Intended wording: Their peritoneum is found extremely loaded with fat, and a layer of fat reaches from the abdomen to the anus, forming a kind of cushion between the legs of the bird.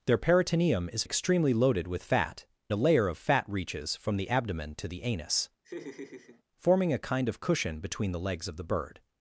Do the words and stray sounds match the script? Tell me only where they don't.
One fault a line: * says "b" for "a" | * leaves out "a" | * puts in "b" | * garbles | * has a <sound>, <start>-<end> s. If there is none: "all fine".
* leaves out "found"
* leaves out "and"
* has a laugh, 5.6-6.4 s